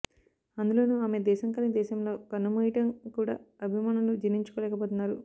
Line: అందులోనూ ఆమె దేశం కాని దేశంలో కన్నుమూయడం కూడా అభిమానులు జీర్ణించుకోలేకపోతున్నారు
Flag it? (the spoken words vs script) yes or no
no